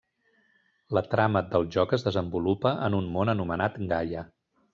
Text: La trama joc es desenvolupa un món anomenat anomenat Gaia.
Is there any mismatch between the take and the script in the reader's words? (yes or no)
yes